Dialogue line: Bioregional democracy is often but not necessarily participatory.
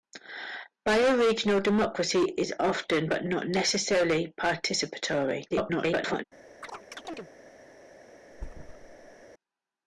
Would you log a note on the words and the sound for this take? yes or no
yes